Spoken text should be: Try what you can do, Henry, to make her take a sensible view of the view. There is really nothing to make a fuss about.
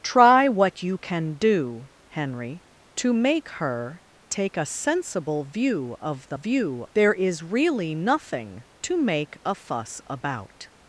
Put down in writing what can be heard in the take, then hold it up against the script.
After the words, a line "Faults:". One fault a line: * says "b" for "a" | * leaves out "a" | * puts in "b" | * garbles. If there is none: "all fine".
Try what you can do, Henry, to make her take a sensible view of the view. There is really nothing to make a fuss about.
Faults:
all fine